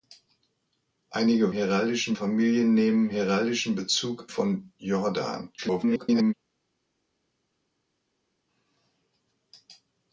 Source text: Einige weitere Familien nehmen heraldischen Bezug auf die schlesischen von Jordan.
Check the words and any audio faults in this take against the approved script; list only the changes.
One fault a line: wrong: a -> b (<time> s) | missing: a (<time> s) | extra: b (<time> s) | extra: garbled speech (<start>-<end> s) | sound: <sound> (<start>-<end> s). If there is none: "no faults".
wrong: weitere -> heraldischen (1.5 s)
missing: auf die schlesischen (4.3 s)
extra: garbled speech (5.6-6.3 s)